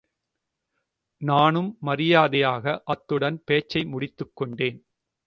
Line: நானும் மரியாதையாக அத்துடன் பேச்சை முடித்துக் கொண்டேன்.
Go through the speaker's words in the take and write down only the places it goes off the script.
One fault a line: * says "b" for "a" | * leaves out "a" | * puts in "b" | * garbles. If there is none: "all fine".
all fine